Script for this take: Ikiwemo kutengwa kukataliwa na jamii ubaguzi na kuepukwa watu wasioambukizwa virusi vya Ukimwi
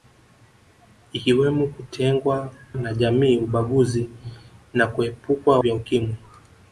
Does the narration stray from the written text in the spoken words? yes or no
yes